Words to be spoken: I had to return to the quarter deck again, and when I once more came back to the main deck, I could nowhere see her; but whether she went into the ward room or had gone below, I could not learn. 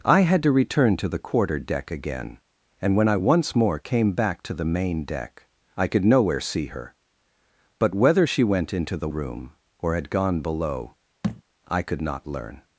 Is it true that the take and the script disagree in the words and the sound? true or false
true